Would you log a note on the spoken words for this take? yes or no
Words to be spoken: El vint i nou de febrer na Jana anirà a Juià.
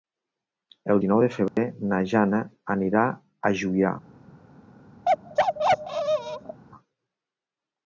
yes